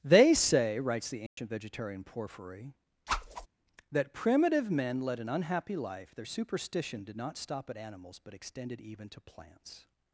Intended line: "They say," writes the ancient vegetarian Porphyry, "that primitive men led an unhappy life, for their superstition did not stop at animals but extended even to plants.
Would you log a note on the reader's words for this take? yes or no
yes